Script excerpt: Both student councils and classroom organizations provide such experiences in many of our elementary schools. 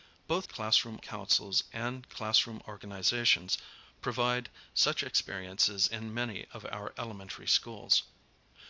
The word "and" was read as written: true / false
true